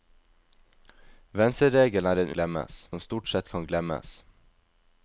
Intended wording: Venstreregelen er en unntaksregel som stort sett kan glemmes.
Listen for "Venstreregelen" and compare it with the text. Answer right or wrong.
right